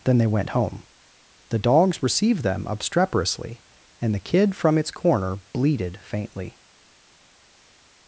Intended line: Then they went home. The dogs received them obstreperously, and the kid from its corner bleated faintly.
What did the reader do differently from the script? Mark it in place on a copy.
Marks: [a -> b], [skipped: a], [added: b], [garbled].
Then they went home. The dogs received them obstreperously, and the kid from its corner bleated faintly.